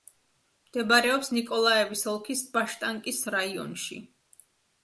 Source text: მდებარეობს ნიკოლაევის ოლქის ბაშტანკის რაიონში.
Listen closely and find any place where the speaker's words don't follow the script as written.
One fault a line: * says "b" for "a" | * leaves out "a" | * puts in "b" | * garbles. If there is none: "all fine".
all fine